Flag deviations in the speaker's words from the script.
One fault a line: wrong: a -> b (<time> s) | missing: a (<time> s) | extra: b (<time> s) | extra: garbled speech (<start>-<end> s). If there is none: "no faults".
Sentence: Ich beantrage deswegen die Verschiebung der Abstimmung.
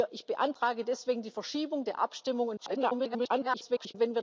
extra: garbled speech (2.6-3.9 s)